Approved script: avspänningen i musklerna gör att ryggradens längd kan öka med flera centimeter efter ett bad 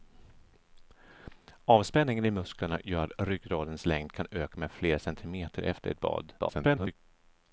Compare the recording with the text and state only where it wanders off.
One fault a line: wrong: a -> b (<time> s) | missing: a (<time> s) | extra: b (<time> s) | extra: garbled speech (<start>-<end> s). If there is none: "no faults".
extra: garbled speech (6.4-7.0 s)